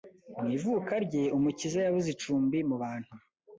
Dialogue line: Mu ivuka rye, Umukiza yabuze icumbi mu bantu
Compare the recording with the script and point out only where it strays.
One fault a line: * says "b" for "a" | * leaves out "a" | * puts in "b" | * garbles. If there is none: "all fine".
all fine